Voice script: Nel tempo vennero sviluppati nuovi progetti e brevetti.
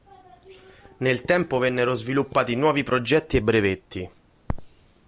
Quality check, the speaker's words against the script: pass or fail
pass